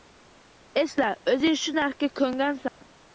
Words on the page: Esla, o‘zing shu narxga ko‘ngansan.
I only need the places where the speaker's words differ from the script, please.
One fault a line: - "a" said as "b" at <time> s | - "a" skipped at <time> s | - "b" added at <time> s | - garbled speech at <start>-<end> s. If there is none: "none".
none